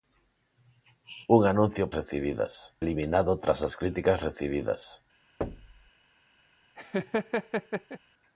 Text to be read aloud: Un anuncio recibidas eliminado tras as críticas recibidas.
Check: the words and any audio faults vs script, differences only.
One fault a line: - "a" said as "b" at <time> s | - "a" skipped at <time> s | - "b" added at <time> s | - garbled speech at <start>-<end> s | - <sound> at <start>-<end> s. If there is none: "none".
- thud at 5.4-5.9 s
- laugh at 6.8-8.0 s